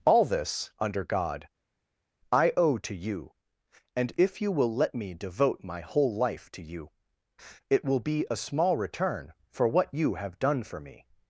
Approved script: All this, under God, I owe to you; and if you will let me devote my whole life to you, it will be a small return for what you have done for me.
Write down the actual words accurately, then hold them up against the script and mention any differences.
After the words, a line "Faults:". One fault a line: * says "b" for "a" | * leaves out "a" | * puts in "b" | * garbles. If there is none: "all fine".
All this, under God, I owe to you; and if you will let me devote my whole life to you, it will be a small return for what you have done for me.
Faults:
all fine